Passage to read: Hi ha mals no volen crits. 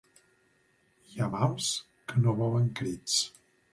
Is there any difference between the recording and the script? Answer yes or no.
yes